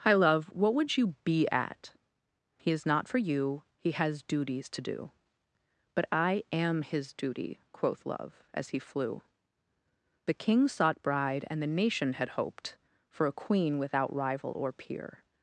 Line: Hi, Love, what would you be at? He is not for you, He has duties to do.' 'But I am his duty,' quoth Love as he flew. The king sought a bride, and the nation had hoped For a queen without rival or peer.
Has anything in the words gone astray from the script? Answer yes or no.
yes